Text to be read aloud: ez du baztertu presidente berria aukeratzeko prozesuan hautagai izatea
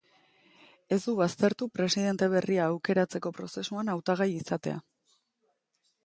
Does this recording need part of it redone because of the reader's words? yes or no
no